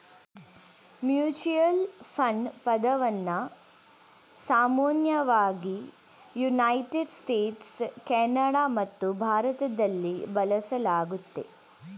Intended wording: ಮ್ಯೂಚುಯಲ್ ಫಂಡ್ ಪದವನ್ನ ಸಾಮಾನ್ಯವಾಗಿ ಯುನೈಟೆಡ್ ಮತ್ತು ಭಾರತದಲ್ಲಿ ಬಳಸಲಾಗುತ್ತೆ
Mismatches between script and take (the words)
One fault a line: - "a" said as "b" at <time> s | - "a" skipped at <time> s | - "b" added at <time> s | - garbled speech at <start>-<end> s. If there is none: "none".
- "ಸ್ಟೇಟ್ಸ್ ಕೆನಡಾ" added at 7.2 s